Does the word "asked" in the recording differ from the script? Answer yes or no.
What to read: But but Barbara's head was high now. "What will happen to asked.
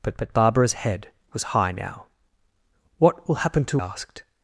no